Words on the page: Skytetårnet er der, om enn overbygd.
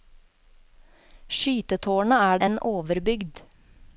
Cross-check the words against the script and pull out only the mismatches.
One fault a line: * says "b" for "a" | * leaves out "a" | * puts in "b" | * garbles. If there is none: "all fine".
* leaves out "der om"